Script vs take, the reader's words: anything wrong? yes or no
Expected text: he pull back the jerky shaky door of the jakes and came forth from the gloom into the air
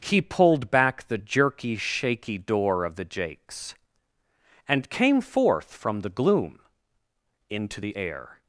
yes